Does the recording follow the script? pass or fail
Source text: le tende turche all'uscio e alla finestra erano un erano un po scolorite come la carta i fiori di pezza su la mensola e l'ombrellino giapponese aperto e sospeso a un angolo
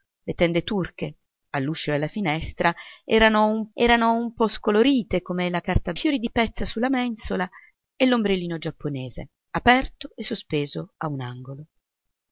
pass